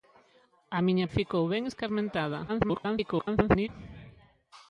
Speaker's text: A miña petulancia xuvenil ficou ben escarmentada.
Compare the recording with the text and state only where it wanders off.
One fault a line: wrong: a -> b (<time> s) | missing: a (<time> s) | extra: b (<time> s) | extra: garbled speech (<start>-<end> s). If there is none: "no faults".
missing: petulancia xuvenil (1.1 s)
extra: garbled speech (2.5-3.7 s)